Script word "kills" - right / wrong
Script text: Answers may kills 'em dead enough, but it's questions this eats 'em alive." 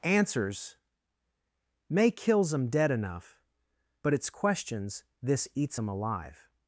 right